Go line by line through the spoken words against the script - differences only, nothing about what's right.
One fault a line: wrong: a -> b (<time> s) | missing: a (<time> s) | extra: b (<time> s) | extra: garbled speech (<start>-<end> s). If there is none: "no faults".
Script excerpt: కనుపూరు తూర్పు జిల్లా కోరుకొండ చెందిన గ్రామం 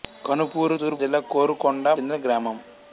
no faults